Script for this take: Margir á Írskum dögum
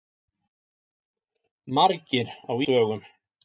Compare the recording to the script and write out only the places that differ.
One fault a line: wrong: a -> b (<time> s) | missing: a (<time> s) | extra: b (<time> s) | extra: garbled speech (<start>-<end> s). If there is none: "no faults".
missing: Írskum (2.5 s)